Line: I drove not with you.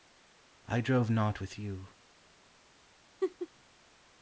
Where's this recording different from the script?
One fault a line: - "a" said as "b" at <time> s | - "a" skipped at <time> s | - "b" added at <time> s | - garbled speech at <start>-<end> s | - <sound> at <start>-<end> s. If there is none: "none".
- laugh at 3.2-3.5 s